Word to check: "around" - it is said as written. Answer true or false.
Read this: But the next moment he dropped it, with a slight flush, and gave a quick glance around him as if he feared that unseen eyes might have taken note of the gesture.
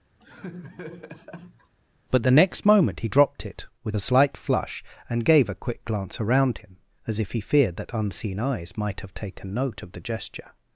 true